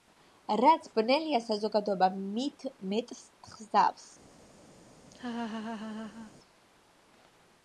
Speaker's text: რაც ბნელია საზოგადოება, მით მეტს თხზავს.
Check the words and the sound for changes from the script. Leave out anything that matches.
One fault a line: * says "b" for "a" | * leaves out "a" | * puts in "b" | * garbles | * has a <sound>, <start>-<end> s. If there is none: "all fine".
* has a laugh, 5.1-6.3 s